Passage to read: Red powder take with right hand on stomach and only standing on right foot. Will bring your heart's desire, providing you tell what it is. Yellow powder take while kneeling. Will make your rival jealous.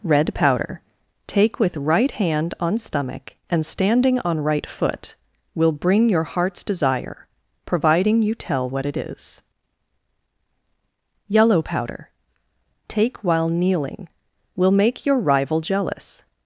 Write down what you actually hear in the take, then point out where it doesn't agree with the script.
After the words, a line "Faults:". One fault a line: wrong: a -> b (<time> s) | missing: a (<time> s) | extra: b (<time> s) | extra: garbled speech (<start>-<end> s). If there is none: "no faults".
Red powder take with right hand on stomach and standing on right foot. Will bring your heart's desire, providing you tell what it is. Yellow powder take while kneeling. Will make your rival jealous.
Faults:
missing: only (3.6 s)